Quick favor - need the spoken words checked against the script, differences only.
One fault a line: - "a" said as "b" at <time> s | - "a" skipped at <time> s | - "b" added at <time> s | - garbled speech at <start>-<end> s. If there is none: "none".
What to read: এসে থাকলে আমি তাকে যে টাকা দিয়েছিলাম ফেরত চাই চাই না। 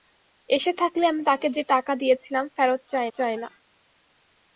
none